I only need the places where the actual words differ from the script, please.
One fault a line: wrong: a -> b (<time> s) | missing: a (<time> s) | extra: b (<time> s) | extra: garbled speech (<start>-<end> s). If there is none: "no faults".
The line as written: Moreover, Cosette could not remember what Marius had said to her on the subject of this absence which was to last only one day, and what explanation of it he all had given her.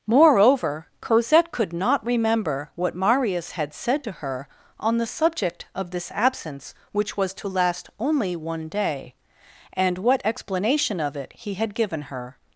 missing: all (11.5 s)